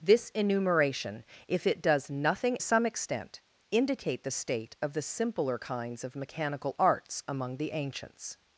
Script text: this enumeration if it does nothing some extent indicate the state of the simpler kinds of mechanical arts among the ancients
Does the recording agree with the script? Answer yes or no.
yes